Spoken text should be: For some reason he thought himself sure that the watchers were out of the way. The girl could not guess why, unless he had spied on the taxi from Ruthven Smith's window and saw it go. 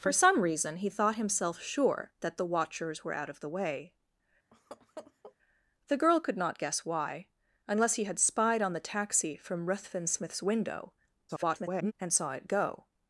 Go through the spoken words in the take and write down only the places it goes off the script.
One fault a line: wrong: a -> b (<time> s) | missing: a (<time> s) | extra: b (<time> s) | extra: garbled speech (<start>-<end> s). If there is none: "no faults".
extra: garbled speech (11.3-11.9 s)